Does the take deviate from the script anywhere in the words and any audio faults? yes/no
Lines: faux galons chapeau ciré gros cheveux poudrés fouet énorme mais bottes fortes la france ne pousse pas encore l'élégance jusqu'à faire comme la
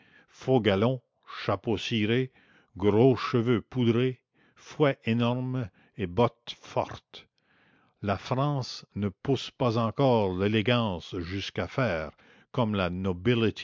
yes